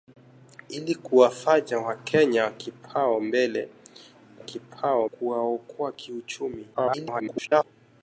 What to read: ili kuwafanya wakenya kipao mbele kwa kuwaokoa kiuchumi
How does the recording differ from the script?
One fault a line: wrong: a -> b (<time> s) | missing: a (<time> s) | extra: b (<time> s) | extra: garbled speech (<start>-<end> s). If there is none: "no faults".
wrong: kwa -> kipao (4.4 s)
extra: garbled speech (6.7-7.6 s)